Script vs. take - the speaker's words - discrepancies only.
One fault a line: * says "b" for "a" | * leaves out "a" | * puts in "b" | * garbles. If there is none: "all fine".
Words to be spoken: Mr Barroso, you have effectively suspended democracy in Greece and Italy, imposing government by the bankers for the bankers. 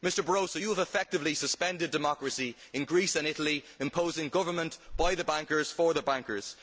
all fine